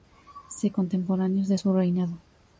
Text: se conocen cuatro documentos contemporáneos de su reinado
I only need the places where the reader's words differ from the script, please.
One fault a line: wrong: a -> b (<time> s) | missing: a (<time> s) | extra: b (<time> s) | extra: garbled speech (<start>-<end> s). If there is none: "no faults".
missing: conocen cuatro documentos (0.7 s)